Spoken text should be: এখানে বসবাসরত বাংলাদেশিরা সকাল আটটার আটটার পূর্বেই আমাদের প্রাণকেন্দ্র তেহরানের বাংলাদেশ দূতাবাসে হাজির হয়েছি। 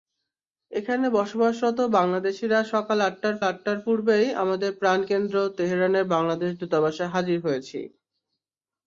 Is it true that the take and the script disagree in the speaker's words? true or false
false